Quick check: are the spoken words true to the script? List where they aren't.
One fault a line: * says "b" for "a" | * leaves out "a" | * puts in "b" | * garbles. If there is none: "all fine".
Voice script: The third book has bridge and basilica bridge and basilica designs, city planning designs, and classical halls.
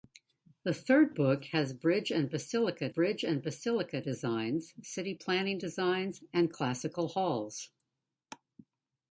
all fine